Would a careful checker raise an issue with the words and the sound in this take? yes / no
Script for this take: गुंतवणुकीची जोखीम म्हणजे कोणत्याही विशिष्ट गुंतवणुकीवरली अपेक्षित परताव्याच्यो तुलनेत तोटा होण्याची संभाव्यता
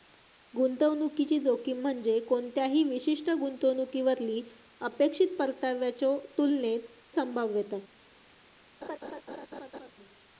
yes